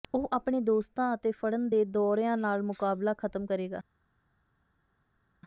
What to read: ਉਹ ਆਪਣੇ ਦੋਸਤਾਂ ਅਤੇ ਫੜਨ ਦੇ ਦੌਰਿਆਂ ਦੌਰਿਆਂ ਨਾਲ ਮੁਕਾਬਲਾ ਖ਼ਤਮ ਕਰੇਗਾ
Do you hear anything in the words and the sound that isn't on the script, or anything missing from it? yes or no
yes